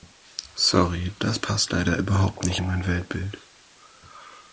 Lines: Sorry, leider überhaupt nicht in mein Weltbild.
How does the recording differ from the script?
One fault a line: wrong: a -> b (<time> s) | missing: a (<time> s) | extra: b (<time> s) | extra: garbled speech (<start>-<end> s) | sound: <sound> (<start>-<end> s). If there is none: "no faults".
extra: das passt (1.2 s)